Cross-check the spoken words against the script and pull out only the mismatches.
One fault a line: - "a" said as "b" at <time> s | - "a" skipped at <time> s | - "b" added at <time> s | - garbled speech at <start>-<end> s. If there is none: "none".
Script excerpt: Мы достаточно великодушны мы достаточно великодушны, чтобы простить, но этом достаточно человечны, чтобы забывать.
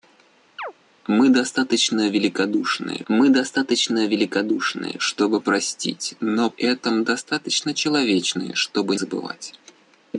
none